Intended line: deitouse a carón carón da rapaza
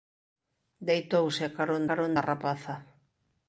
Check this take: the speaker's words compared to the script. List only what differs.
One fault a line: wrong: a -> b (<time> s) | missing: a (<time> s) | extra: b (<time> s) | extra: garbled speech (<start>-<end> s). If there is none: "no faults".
no faults